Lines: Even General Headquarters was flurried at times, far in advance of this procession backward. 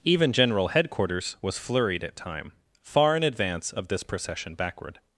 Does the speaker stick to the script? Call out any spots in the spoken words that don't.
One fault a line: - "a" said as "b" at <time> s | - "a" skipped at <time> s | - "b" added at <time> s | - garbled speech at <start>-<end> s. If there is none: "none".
- "times" said as "time" at 2.1 s